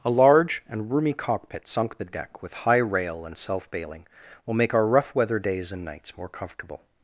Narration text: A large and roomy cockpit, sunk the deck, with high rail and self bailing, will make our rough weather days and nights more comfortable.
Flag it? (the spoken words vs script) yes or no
no